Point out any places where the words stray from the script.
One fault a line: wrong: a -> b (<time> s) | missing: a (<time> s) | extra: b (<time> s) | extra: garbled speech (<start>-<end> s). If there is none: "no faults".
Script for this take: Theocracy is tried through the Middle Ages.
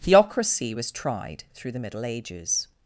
wrong: is -> was (0.7 s)